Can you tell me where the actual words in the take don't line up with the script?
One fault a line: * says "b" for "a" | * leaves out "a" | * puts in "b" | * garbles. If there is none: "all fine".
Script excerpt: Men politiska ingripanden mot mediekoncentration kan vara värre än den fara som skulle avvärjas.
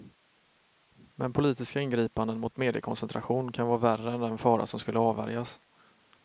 all fine